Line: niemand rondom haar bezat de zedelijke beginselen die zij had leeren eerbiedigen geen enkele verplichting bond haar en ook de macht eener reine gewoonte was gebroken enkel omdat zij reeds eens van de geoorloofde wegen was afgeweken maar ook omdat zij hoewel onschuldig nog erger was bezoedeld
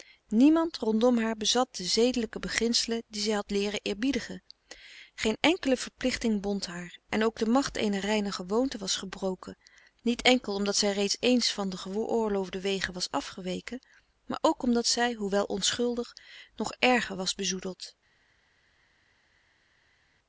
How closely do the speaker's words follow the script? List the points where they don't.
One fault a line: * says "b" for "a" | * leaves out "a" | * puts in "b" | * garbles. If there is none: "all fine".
* puts in "niet"